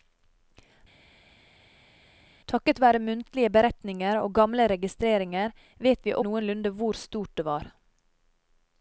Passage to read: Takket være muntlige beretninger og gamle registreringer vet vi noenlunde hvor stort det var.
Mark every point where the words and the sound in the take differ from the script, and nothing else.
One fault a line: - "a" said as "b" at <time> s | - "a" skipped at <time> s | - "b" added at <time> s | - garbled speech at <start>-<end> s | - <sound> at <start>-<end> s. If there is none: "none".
none